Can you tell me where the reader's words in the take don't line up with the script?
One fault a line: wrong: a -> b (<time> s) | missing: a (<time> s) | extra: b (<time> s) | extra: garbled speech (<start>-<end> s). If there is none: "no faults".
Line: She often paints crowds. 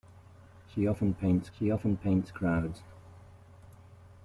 extra: she often paints (1.6 s)